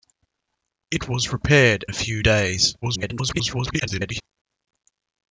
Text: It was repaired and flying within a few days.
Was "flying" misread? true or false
true